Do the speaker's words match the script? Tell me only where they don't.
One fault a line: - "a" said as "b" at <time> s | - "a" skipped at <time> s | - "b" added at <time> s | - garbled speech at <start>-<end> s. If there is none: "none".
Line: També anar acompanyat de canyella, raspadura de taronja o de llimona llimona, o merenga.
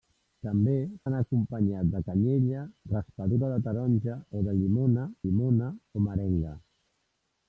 none